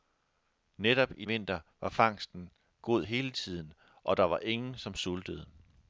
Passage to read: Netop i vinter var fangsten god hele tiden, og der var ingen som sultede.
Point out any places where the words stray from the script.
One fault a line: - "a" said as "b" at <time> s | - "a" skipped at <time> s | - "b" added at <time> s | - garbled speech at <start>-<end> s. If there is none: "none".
none